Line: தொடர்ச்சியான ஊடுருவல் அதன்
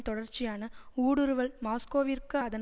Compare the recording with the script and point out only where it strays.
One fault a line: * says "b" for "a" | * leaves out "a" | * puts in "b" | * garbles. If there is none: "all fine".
* puts in "மாஸ்கோவிற்கு"